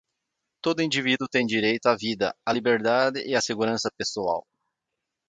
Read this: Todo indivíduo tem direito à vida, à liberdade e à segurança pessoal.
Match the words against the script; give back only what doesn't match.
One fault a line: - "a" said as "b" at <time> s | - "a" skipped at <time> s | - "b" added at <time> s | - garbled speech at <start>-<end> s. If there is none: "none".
none